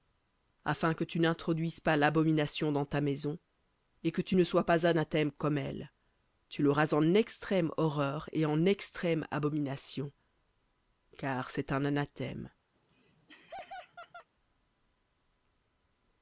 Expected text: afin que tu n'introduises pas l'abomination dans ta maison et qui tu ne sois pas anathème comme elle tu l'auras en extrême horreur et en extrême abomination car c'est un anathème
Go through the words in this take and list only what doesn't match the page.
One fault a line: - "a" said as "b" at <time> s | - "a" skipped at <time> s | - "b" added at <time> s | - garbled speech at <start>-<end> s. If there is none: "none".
- "qui" said as "que" at 4.1 s